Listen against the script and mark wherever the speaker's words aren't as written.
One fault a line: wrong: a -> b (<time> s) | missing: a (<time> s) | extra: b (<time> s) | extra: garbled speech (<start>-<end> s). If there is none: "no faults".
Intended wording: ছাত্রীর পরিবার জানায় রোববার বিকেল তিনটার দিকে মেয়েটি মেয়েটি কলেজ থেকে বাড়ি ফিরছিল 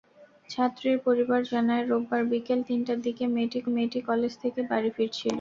no faults